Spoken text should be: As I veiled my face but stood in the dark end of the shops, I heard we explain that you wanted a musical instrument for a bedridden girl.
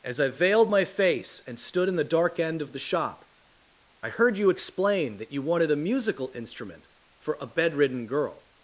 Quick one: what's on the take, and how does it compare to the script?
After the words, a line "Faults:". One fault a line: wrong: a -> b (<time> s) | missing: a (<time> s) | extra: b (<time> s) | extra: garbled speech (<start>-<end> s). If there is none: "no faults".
As I veiled my face and stood in the dark end of the shop, I heard you explain that you wanted a musical instrument for a bedridden girl.
Faults:
wrong: but -> and (1.5 s)
wrong: shops -> shop (2.8 s)
wrong: we -> you (4.4 s)